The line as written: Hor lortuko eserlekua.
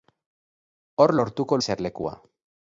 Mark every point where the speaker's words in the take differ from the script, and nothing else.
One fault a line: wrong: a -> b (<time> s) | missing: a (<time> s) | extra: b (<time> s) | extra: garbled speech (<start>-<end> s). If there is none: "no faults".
no faults